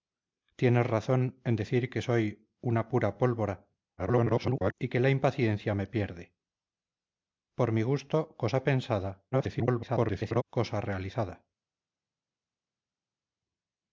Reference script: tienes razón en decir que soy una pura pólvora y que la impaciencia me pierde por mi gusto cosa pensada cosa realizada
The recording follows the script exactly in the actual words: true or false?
false